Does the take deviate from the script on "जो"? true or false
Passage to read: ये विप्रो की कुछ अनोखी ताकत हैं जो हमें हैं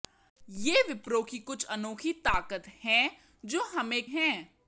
false